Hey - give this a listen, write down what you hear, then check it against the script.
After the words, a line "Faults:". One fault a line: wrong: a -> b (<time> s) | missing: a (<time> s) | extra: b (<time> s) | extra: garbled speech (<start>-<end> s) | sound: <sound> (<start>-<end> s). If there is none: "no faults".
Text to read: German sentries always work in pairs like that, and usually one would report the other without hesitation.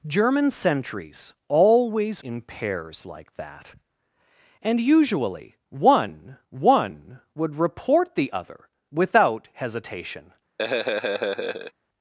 German sentries always in pairs like that, and usually one one would report the other without hesitation.
Faults:
missing: work (2.2 s)
extra: one (6.5 s)
sound: laugh (10.6-11.7 s)